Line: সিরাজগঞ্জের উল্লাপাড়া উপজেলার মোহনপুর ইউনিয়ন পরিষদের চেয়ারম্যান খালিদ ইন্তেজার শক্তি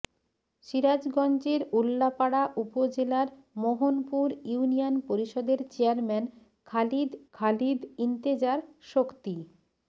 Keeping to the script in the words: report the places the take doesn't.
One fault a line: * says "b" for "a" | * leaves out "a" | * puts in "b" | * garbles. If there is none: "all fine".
* puts in "খালিদ"